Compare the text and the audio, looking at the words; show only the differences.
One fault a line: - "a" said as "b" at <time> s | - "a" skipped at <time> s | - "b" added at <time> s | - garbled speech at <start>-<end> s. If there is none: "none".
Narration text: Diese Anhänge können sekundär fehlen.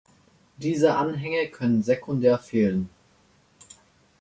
none